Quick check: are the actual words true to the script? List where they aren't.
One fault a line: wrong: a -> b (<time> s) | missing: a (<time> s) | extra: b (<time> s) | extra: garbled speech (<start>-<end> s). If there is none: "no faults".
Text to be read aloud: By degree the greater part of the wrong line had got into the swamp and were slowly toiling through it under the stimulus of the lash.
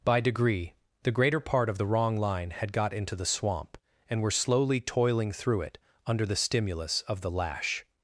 no faults